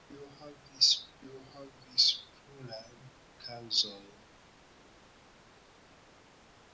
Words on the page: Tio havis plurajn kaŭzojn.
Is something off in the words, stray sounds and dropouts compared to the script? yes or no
yes